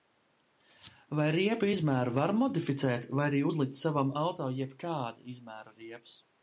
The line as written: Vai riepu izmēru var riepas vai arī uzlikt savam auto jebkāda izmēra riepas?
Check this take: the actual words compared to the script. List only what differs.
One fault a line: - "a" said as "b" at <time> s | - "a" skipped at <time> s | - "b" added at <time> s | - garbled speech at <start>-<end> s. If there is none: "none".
- "riepas" said as "modificēt" at 2.4 s